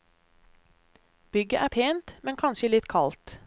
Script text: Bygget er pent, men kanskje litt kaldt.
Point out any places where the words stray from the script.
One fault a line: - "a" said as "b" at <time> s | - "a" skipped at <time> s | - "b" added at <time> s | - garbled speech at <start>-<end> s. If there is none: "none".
none